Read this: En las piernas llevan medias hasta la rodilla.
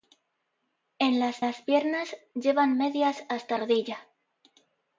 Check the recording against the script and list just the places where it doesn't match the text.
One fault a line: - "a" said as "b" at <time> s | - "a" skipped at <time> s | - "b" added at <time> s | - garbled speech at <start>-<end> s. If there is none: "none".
- "las" added at 1.4 s
- "la" skipped at 3.6 s